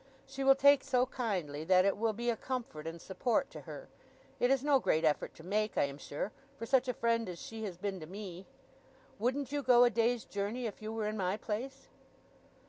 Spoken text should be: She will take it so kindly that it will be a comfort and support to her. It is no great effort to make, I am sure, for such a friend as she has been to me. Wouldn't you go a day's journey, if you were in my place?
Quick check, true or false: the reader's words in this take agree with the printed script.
false